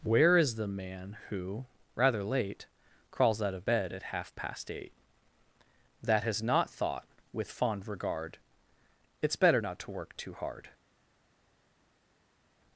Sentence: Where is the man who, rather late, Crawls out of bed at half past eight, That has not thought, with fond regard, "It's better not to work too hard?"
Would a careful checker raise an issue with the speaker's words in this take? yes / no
no